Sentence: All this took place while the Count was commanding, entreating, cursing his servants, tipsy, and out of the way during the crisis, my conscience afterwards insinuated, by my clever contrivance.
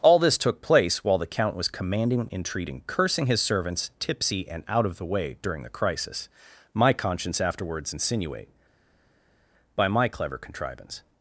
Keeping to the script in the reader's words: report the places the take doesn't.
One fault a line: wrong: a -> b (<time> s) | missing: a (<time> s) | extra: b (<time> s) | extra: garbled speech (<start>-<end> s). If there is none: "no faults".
wrong: insinuated -> insinuate (7.9 s)